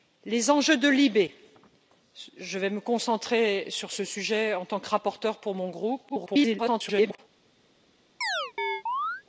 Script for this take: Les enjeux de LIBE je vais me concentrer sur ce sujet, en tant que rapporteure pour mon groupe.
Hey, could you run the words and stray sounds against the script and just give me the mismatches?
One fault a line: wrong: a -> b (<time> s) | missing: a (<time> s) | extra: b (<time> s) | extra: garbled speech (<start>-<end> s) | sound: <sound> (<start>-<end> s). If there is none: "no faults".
extra: garbled speech (6.1-7.2 s)
sound: chirp (8.2-9.2 s)